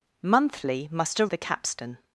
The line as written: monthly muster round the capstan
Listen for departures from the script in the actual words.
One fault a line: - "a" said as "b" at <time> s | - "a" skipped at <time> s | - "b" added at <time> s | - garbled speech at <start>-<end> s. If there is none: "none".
- "round" skipped at 1.3 s